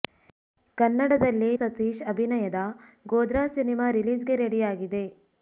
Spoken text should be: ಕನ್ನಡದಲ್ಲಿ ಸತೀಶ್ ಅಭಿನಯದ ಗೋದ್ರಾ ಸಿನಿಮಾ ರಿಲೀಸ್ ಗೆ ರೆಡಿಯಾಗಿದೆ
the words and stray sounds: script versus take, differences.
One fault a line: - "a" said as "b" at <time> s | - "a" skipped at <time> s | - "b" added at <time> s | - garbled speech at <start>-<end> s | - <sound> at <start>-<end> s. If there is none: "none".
none